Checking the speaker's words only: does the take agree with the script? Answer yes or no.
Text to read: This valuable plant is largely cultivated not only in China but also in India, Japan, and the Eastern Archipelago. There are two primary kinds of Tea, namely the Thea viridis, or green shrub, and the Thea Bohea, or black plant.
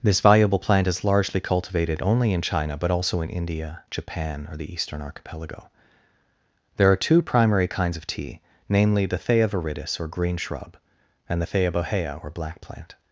no